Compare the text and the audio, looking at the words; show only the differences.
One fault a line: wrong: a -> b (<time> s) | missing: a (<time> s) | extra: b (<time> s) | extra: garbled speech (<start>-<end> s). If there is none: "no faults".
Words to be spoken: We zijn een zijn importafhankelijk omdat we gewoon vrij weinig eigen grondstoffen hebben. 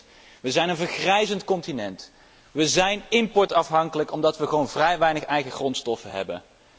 extra: vergrijzend continent We (0.8 s)